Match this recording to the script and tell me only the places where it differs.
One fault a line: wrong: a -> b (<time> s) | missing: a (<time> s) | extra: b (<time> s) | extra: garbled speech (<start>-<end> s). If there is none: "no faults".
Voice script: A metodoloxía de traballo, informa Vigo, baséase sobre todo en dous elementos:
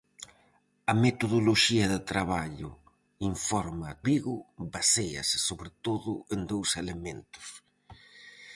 no faults